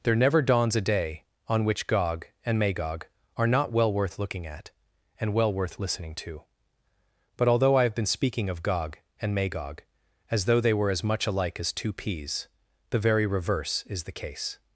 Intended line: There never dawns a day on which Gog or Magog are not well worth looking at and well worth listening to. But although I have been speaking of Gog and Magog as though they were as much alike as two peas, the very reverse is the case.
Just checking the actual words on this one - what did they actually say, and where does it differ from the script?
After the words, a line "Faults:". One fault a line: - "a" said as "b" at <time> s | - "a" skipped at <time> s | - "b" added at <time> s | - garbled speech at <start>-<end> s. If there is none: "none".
There never dawns a day on which Gog and Magog are not well worth looking at and well worth listening to. But although I have been speaking of Gog and Magog as though they were as much alike as two peas, the very reverse is the case.
Faults:
- "or" said as "and" at 2.4 s